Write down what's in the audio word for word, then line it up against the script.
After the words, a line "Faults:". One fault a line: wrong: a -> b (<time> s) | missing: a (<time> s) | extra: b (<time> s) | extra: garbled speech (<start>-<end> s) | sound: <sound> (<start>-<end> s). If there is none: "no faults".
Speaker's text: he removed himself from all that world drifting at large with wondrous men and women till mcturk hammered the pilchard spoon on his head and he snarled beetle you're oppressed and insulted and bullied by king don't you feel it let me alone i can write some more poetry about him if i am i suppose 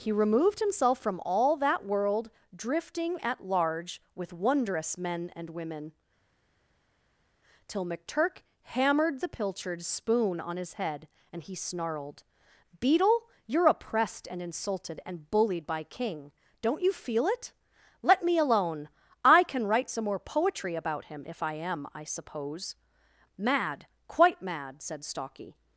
he removed himself from all that world drifting at large with wondrous men and women till mcturk hammered the pilchard spoon on his head and he snarled beetle you're oppressed and insulted and bullied by king don't you feel it let me alone i can write some more poetry about him if i am i suppose mad quite mad said stalky
Faults:
extra: mad quite mad said stalky (23.4 s)